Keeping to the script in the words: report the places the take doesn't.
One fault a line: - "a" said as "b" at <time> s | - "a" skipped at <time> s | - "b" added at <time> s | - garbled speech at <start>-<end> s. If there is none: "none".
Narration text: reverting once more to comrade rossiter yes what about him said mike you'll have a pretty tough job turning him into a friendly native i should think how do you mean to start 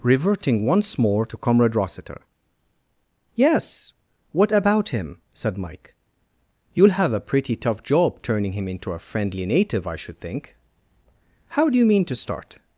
none